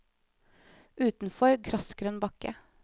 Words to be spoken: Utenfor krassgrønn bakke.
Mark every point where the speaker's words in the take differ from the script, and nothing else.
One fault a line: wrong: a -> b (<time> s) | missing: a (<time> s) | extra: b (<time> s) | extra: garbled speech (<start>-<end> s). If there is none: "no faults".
no faults